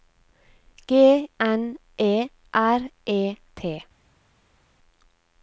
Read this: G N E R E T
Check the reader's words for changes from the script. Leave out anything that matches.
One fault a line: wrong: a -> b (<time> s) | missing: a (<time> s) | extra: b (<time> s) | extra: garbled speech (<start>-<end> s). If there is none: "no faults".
no faults